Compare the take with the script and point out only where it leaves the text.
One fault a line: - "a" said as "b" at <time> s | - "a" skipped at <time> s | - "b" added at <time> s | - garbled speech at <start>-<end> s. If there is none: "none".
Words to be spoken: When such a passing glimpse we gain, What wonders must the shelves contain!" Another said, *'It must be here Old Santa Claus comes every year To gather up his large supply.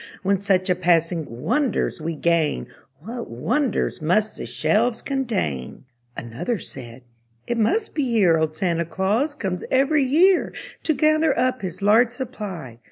- "glimpse" said as "wonders" at 1.3 s